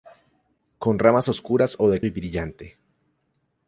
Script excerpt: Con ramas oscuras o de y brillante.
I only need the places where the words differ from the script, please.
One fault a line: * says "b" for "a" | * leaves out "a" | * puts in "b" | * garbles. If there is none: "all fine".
all fine